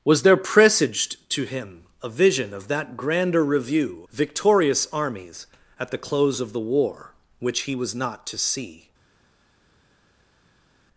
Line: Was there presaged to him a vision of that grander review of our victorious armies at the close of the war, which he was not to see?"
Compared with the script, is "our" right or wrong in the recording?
wrong